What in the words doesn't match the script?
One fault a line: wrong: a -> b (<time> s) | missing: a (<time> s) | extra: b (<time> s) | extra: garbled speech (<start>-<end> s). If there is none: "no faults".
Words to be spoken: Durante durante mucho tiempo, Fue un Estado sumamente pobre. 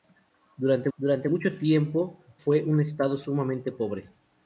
no faults